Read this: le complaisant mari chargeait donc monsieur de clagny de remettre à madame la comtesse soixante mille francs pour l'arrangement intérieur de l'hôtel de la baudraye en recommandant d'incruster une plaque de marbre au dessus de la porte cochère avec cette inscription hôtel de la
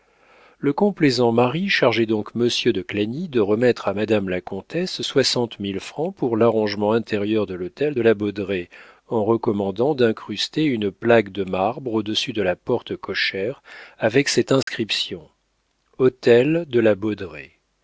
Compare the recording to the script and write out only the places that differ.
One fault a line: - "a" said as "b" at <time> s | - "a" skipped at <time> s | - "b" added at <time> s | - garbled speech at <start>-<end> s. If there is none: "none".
none